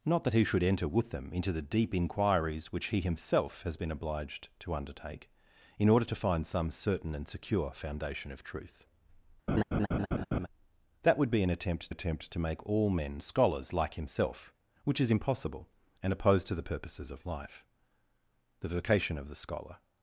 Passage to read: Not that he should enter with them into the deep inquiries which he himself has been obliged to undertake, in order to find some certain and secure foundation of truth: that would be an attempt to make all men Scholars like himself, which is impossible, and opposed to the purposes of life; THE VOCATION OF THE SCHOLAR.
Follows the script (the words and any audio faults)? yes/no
no